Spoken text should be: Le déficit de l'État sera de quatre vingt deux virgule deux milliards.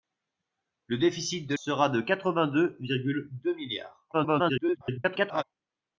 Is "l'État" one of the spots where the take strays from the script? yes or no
yes